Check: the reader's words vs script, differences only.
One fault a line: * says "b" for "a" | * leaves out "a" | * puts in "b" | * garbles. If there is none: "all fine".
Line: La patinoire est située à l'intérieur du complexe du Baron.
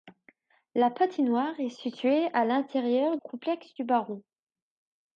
* leaves out "du"